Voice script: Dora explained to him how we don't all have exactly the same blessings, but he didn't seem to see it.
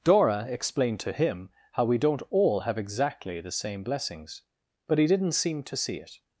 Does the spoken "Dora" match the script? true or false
true